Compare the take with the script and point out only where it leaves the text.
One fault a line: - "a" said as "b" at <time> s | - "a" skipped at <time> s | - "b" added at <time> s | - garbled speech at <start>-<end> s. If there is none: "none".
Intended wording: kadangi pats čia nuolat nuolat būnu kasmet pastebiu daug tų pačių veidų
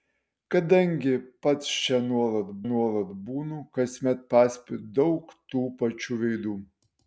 none